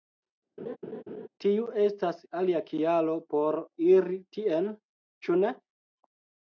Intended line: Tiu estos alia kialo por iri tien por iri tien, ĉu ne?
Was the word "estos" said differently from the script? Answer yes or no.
yes